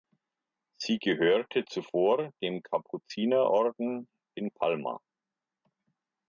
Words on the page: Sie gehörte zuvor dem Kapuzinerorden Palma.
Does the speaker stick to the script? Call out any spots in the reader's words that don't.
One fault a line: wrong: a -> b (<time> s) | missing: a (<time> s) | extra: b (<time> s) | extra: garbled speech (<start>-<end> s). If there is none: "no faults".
extra: in (4.3 s)